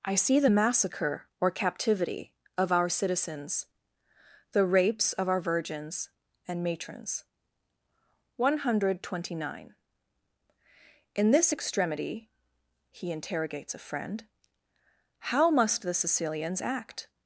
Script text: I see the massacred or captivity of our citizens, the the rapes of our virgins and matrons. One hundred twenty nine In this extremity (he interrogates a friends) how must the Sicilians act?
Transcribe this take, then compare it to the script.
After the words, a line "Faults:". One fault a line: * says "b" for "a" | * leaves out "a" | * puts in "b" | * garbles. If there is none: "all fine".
I see the massacre or captivity of our citizens, the rapes of our virgins and matrons. One hundred twenty nine In this extremity (he interrogates a friend) how must the Sicilians act?
Faults:
* says "massacre" for "massacred"
* leaves out "the"
* says "friend" for "friends"